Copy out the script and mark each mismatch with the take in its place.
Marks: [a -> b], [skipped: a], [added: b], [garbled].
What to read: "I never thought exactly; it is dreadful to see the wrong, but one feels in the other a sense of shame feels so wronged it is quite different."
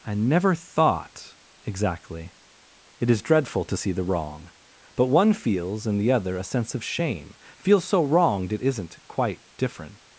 "I never thought exactly; it is dreadful to see the wrong, but one feels in the other a sense of shame feels so wronged it [is -> isn't] quite different."